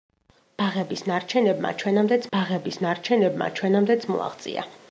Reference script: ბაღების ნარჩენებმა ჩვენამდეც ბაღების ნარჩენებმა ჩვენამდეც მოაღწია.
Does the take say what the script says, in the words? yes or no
yes